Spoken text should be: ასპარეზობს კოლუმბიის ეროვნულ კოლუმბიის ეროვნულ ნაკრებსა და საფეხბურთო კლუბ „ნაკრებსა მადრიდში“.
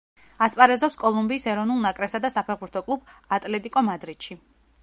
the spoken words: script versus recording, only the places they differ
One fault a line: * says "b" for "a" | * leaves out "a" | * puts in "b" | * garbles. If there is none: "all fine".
* leaves out "კოლუმბიის ეროვნულ"
* says "ატლეტიკო" for "ნაკრებსა"